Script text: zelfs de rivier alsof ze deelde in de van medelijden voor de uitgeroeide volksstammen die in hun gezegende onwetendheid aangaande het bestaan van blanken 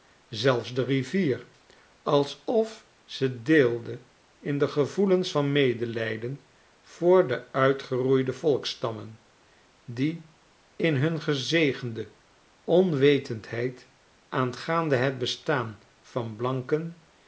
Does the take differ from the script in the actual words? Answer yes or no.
yes